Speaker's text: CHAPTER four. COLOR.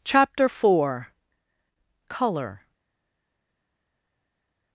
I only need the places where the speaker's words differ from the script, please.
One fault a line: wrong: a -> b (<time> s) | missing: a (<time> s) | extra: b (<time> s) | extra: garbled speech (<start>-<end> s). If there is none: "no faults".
no faults